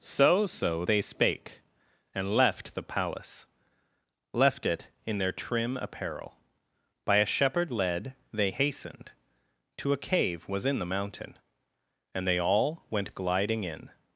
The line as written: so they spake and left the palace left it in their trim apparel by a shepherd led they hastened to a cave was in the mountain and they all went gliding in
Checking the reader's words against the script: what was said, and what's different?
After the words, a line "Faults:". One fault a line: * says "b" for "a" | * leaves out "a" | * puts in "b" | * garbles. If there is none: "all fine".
so so they spake and left the palace left it in their trim apparel by a shepherd led they hastened to a cave was in the mountain and they all went gliding in
Faults:
* puts in "so"